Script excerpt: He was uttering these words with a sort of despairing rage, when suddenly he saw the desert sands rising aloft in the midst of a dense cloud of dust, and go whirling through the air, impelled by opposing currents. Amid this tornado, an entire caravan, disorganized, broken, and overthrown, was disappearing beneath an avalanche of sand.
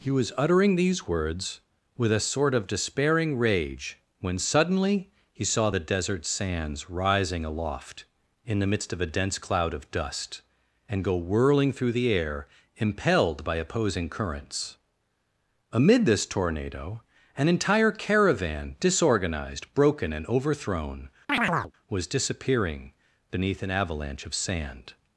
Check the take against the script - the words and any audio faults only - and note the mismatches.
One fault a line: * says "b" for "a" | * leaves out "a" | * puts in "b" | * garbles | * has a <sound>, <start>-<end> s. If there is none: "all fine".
* has a chirp, 21.3-21.7 s